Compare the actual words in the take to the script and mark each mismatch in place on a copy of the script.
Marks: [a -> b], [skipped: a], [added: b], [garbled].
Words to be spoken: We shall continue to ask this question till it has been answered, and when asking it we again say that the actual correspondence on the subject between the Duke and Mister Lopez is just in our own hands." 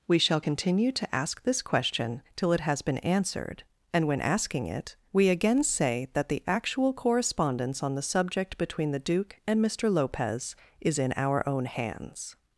We shall continue to ask this question till it has been answered, and when asking it we again say that the actual correspondence on the subject between the Duke and Mister Lopez is [skipped: just] in our own hands."